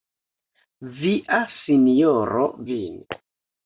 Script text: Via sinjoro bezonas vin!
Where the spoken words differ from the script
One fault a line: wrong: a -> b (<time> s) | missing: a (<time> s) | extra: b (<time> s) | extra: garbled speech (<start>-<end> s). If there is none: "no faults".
missing: bezonas (2.5 s)